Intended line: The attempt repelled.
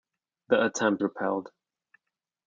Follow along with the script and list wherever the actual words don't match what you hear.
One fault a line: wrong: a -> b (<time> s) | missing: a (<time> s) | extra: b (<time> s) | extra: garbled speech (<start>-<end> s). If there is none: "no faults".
no faults